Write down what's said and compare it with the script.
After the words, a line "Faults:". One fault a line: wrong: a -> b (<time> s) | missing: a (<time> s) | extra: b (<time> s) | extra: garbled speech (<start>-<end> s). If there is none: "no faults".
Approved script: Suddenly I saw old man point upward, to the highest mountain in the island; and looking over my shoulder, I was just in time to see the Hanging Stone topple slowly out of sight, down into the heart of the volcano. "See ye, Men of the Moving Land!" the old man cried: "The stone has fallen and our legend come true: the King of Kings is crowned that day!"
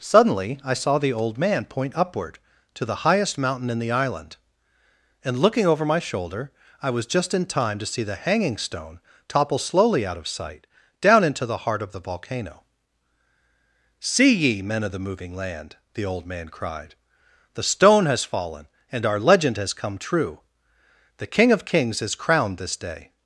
Suddenly I saw the old man point upward, to the highest mountain in the island; and looking over my shoulder, I was just in time to see the Hanging Stone topple slowly out of sight, down into the heart of the volcano. "See ye, Men of the Moving Land!" the old man cried: "The stone has fallen and our legend has come true: the King of Kings is crowned this day!"
Faults:
extra: the (1.0 s)
extra: has (19.6 s)
wrong: that -> this (22.6 s)